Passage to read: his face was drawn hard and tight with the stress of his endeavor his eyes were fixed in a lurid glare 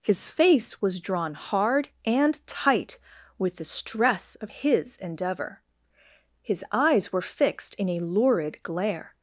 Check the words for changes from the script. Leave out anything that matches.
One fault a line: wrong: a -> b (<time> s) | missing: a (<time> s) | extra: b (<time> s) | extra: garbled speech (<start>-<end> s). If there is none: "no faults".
no faults